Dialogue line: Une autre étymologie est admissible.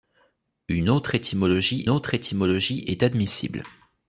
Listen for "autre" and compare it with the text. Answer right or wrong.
right